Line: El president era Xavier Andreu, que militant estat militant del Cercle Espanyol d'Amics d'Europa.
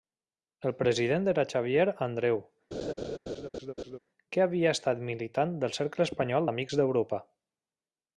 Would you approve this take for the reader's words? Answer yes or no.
no